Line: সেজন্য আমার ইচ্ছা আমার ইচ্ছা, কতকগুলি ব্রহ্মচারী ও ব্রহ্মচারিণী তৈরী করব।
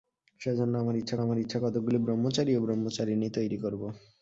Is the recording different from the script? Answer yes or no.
no